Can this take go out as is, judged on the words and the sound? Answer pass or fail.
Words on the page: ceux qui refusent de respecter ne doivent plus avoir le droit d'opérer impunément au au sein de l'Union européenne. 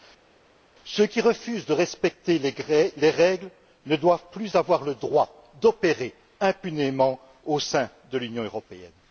fail